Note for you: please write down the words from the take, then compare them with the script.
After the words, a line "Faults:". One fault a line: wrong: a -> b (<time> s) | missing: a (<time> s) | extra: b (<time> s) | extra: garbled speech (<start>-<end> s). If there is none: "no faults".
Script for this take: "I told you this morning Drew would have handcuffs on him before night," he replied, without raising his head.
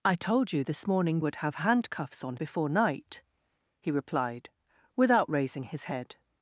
"I told you this morning Would have handcuffs on before night," he replied, without raising his head.
Faults:
missing: Drew (1.2 s)
missing: him (2.4 s)